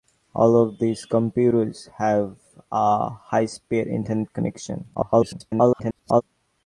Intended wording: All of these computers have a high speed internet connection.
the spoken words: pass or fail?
fail